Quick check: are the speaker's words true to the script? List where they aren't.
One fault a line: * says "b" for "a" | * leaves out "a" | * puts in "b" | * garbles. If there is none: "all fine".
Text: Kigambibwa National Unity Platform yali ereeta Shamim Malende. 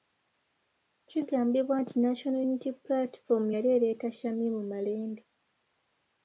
* puts in "nti"